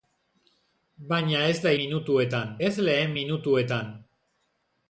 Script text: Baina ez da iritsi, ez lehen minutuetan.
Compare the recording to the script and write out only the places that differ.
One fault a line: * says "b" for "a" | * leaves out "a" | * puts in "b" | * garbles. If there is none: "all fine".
* says "minutuetan" for "iritsi"